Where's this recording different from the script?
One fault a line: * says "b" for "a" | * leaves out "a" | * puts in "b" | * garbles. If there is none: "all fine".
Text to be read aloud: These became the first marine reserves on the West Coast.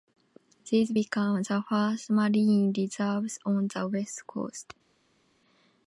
all fine